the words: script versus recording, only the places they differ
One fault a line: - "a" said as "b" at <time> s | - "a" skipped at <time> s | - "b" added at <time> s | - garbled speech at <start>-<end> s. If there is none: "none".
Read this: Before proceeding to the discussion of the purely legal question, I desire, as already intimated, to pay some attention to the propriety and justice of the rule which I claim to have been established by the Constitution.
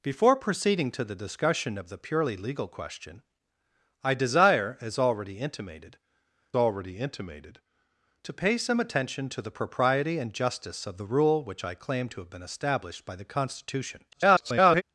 - "already intimated" added at 6.5 s
- garbled speech at 14.1-14.8 s